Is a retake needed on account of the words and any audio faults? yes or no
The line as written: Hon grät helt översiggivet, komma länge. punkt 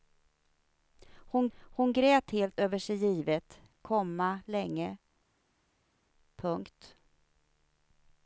yes